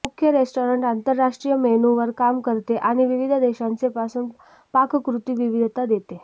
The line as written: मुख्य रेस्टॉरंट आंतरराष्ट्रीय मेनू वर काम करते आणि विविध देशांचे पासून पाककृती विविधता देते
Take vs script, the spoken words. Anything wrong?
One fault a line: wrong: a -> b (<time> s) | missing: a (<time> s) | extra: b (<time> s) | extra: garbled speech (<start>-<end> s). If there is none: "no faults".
no faults